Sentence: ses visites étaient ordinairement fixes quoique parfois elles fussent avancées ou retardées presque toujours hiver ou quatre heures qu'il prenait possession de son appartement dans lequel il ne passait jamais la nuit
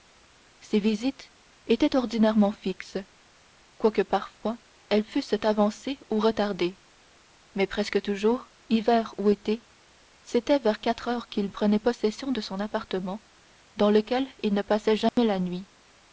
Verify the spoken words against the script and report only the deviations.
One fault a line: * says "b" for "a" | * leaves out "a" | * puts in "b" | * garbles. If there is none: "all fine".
* puts in "mais"
* puts in "été c'était vers"